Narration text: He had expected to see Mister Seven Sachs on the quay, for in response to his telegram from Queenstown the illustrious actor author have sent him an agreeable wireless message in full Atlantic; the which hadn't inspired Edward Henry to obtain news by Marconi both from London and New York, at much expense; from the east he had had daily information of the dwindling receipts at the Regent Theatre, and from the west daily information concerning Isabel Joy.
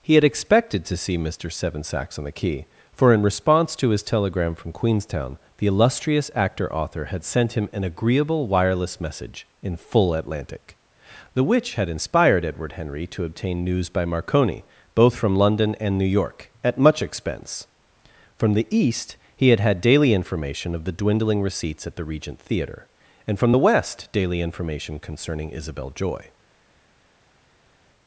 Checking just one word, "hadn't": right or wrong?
wrong